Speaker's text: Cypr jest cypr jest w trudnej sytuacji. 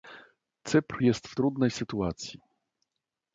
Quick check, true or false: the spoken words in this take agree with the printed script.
false